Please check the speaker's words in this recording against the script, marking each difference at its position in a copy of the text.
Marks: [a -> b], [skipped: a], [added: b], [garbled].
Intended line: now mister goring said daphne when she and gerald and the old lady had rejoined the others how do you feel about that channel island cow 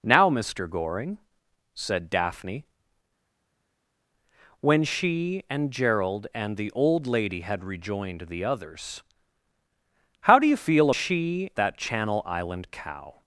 now mister goring said daphne when she and gerald and the old lady had rejoined the others how do you feel [about -> she] that channel island cow